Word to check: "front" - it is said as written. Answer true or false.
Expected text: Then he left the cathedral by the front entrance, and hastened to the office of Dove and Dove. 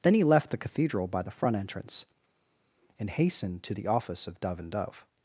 true